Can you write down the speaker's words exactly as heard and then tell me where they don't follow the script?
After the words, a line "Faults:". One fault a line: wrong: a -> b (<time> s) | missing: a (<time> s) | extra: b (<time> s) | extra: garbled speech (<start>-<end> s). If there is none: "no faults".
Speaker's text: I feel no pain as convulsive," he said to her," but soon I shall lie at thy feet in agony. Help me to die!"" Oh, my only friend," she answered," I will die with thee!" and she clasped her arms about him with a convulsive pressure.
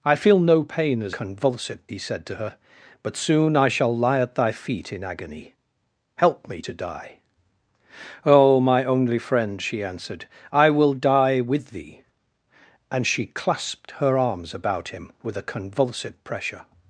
I feel no pain as convulsive," he said to her," but soon I shall lie at thy feet in agony. Help me to die!"" Oh, my only friend," she answered," I will die with thee!" and she clasped her arms about him with a convulsive pressure.
Faults:
no faults